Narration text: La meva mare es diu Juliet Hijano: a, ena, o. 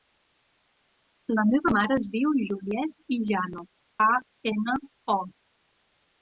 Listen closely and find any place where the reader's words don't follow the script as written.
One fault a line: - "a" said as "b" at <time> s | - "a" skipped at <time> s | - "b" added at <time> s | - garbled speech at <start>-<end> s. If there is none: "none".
none